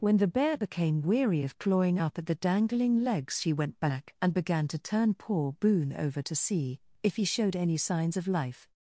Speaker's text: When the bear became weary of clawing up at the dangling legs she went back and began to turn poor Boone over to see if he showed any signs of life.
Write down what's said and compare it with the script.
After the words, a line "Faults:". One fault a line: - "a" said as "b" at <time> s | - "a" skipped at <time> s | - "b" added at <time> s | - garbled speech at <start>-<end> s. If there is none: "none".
When the bear became weary of clawing up at the dangling legs she went back and began to turn poor Boone over to see if he showed any signs of life.
Faults:
none